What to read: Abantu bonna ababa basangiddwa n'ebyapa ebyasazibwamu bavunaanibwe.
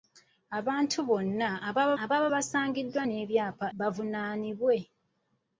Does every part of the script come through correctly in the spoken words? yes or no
no